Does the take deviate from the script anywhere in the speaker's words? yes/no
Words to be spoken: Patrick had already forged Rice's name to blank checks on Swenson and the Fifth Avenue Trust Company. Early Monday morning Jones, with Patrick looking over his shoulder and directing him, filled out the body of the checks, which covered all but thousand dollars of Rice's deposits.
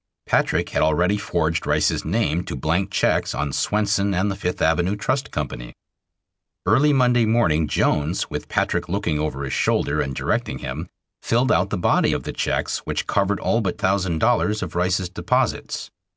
no